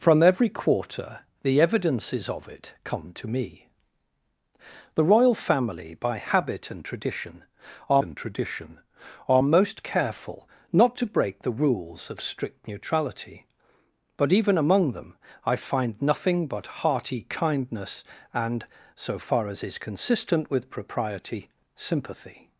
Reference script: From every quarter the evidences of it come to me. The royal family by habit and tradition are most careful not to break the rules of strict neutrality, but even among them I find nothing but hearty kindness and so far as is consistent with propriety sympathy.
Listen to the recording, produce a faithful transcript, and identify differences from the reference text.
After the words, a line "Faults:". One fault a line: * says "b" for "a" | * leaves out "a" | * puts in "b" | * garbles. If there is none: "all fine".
From every quarter the evidences of it come to me. The royal family by habit and tradition are and tradition are most careful not to break the rules of strict neutrality, but even among them I find nothing but hearty kindness and so far as is consistent with propriety sympathy.
Faults:
* puts in "and tradition are"